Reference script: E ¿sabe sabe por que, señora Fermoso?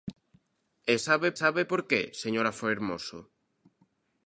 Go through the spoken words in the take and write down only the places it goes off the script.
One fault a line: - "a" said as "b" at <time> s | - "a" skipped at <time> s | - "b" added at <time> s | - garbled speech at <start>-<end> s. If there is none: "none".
none